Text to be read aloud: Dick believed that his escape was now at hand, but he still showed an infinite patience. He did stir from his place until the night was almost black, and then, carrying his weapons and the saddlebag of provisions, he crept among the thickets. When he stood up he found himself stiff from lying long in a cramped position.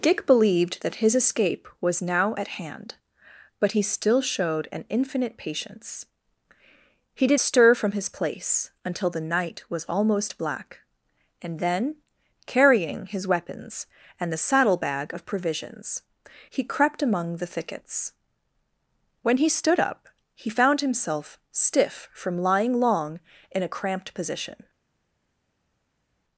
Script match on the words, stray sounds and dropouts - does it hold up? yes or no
yes